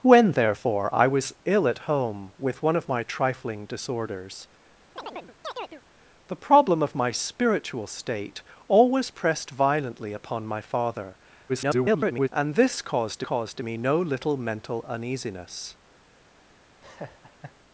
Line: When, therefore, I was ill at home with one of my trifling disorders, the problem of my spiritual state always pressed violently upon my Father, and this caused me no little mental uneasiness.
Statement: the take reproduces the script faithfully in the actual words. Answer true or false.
false